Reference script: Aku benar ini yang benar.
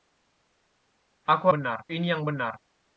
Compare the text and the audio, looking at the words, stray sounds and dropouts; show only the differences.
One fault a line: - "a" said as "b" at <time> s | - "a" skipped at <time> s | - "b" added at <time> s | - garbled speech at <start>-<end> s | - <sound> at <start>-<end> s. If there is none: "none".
none